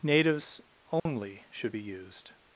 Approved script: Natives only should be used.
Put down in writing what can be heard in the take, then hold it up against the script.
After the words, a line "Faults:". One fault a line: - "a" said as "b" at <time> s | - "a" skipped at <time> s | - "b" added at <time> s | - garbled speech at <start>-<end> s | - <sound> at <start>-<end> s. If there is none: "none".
Natives only should be used.
Faults:
- dropout at 1.0-1.1 s